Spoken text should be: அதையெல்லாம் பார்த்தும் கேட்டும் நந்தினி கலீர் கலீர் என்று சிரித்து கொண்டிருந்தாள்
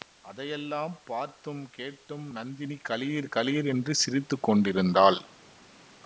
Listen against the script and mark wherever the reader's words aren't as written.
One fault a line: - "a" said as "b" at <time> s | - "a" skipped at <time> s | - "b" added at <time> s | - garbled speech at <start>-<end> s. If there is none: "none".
none